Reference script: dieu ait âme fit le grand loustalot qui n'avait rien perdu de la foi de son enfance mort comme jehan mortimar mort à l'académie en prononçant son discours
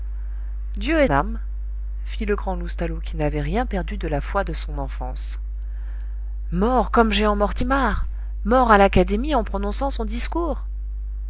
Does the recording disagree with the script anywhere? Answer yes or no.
no